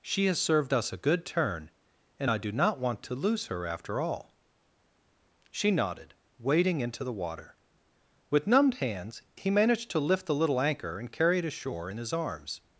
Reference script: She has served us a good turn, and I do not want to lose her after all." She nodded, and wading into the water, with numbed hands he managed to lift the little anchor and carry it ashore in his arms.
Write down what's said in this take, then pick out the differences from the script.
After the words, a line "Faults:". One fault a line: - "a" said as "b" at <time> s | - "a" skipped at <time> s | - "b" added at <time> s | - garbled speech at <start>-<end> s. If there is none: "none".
She has served us a good turn, and I do not want to lose her after all." She nodded, wading into the water, with numbed hands he managed to lift the little anchor and carry it ashore in his arms.
Faults:
- "and" skipped at 6.1 s